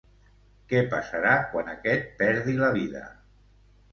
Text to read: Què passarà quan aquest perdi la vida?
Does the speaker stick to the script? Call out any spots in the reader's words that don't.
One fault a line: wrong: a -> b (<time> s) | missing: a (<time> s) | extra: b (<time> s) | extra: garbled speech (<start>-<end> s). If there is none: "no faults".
no faults